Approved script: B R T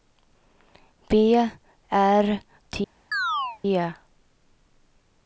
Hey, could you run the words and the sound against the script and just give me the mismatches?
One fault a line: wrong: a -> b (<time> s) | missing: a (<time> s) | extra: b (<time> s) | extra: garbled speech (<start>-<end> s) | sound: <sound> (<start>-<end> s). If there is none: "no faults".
sound: chirp (3.1-3.6 s)